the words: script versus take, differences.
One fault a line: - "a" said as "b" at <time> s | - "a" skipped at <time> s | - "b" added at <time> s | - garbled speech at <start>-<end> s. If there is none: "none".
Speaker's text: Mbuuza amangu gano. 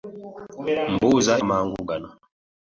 none